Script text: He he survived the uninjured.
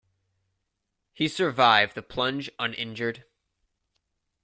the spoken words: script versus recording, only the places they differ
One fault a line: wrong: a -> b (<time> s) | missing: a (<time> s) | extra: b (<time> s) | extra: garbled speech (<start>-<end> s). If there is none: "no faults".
missing: he (1.3 s)
extra: plunge (2.0 s)